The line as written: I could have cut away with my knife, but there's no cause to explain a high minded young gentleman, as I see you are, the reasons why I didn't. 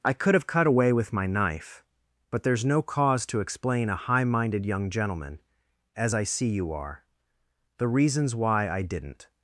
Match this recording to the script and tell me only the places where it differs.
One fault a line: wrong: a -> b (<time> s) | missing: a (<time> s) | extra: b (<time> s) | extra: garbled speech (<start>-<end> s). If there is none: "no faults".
no faults